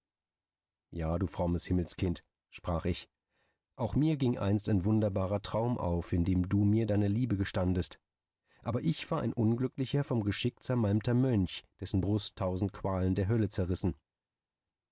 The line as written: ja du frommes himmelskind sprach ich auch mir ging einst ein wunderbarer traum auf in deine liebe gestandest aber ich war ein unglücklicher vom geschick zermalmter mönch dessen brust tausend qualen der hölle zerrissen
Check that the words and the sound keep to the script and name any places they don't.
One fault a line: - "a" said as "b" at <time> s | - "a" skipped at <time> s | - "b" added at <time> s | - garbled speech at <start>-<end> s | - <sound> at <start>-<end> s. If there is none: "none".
- "dem du mir" added at 6.2 s